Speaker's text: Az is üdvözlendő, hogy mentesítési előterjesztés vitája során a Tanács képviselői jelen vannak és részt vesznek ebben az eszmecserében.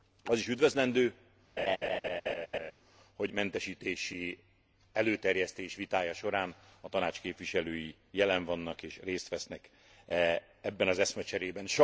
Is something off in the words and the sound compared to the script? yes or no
yes